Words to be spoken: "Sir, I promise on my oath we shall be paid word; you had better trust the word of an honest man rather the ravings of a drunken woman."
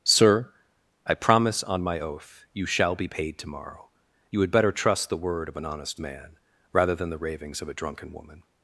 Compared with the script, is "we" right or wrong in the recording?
wrong